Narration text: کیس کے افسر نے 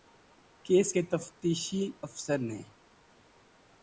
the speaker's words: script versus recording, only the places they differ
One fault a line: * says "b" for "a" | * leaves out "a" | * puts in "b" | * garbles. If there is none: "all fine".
* puts in "تفتیشی"